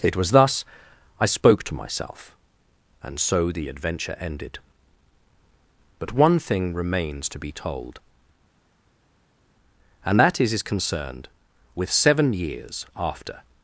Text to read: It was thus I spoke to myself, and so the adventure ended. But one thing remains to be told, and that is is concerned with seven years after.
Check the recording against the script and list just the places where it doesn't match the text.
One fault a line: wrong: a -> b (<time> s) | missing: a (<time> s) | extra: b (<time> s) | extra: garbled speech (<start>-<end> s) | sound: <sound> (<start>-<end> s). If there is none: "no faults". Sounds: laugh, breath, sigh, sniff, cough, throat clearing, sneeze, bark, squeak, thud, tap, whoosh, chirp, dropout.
no faults